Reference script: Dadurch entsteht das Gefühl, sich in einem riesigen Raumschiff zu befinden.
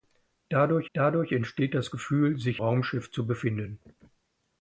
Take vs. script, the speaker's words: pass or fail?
fail